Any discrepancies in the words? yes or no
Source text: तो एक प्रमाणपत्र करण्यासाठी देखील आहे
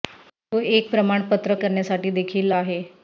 no